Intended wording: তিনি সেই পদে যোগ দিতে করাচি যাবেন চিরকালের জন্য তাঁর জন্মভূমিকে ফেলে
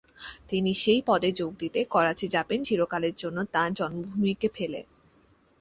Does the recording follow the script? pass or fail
pass